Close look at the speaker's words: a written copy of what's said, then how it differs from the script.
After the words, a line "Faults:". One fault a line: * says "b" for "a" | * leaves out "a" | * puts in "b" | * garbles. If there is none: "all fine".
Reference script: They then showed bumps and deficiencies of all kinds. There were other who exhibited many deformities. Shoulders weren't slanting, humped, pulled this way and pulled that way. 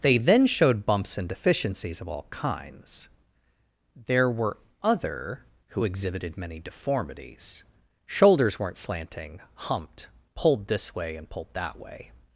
They then showed bumps and deficiencies of all kinds. There were other who exhibited many deformities. Shoulders weren't slanting, humped, pulled this way and pulled that way.
Faults:
all fine